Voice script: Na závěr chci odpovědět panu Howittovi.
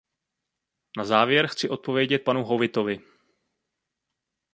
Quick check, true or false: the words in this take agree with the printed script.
true